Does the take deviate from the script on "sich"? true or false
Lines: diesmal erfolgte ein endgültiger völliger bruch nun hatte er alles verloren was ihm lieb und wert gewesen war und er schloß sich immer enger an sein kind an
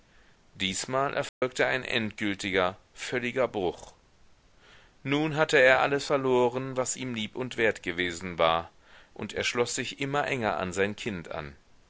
false